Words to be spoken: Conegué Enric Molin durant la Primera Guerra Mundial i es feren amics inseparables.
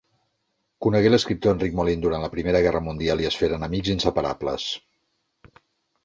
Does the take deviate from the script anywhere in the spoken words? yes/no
yes